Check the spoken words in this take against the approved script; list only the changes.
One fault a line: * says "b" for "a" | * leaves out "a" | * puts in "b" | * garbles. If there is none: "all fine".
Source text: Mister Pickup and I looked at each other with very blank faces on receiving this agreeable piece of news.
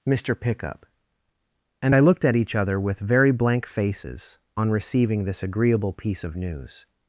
all fine